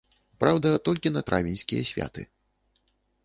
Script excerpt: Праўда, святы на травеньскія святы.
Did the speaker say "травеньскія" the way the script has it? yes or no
yes